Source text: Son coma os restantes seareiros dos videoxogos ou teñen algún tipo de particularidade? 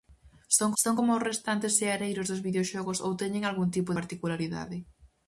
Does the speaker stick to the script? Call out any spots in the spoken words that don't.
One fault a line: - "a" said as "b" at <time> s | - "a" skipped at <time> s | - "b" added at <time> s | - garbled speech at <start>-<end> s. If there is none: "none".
- "son" added at 0.8 s
- "de" skipped at 3.9 s